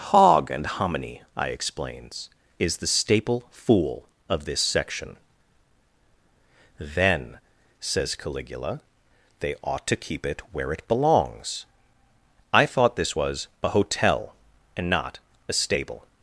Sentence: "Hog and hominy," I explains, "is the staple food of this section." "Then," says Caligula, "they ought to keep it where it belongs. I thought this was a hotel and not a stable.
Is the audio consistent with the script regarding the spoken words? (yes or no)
no